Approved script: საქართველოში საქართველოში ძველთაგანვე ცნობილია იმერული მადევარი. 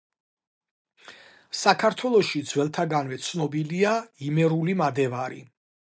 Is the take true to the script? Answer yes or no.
no